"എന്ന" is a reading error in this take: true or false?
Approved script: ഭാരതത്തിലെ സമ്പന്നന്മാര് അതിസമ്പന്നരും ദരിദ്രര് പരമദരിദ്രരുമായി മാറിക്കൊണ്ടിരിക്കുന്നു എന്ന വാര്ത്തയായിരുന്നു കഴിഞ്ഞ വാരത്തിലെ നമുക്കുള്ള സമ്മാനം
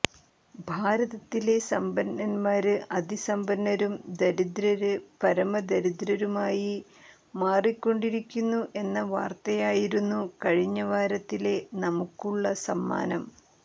false